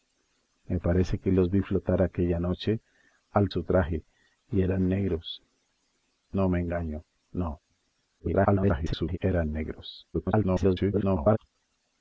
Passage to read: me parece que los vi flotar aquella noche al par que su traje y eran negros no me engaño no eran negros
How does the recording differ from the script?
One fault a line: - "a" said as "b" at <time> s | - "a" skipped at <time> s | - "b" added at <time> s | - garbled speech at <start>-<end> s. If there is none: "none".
- "par que" skipped at 3.5 s
- garbled speech at 8.2-9.2 s
- garbled speech at 10.1-11.4 s